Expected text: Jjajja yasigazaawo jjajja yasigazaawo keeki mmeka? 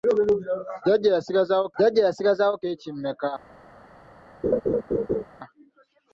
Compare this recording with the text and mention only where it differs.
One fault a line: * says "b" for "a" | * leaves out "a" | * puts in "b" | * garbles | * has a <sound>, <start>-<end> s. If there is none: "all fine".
* has a laugh, 4.4-5.2 s